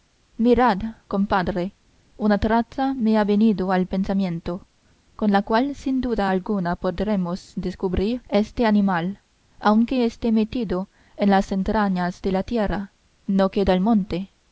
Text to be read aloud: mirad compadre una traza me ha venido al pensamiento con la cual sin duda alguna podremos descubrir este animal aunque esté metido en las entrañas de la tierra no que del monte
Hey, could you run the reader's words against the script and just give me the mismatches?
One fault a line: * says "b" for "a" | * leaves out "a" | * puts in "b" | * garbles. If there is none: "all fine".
all fine